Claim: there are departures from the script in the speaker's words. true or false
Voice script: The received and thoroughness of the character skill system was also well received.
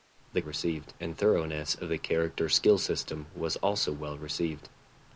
false